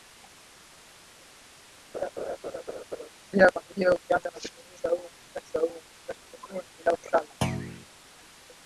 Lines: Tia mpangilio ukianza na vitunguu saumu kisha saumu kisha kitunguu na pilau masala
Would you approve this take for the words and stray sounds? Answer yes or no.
no